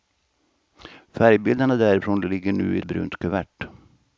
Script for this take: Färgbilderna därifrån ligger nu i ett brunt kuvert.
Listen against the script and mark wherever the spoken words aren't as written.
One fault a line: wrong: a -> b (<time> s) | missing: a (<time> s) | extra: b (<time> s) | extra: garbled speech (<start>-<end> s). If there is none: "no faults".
missing: ett (2.8 s)